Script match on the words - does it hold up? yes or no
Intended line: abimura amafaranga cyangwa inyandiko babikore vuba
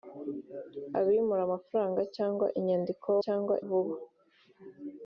no